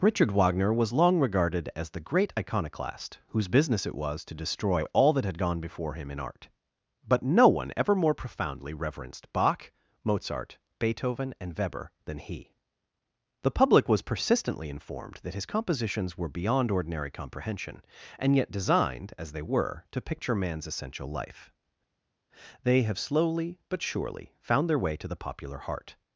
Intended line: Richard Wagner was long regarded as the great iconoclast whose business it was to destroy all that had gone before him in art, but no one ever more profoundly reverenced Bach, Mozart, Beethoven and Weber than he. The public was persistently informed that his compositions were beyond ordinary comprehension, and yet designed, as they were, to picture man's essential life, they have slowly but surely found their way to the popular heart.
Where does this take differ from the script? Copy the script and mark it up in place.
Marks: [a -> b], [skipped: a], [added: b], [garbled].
Richard Wagner was long regarded as the great iconoclast whose business it was to destroy all that had gone before him in art, but no one ever more profoundly reverenced Bach, Mozart, Beethoven and Weber than he. The public was persistently informed that his compositions were beyond ordinary comprehension, and yet designed, as they were, to picture man's essential life, they have slowly but surely found their way to the popular heart.